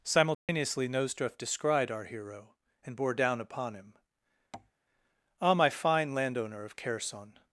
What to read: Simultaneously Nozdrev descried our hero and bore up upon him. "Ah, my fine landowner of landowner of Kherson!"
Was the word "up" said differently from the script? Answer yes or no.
yes